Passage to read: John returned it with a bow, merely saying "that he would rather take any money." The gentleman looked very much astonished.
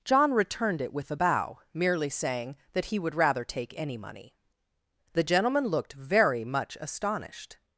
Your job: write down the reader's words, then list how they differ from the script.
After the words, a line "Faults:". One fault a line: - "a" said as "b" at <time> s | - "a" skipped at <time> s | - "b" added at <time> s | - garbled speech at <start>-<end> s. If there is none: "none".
John returned it with a bow, merely saying "that he would rather take any money." The gentleman looked very much astonished.
Faults:
none